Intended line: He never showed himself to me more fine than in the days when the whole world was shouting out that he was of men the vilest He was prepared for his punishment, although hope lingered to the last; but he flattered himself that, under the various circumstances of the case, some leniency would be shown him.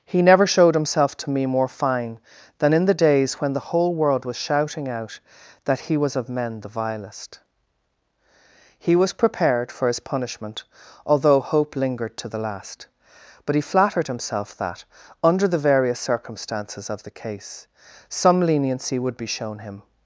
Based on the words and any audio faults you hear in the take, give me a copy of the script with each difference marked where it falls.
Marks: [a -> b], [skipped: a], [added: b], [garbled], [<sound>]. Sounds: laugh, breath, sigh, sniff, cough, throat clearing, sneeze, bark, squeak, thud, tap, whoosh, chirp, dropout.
He never showed himself to me more fine than in the days when the whole world was shouting out that he was of men the vilest He was prepared for his punishment, although hope lingered to the last; but he flattered himself that, under the various circumstances of the case, some leniency would be shown him.